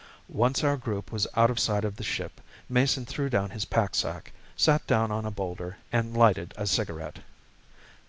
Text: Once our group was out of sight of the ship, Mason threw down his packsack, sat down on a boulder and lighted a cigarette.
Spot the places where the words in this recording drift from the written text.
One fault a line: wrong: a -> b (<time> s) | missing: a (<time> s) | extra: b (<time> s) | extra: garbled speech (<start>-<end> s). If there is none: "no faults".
no faults